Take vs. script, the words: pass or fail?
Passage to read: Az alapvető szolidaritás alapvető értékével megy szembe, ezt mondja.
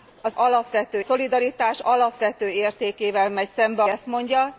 pass